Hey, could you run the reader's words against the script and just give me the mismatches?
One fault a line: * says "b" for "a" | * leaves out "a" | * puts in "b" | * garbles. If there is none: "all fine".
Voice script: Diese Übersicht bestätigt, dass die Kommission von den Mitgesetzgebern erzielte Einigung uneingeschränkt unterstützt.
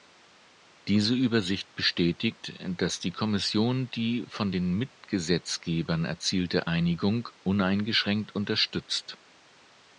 * puts in "die"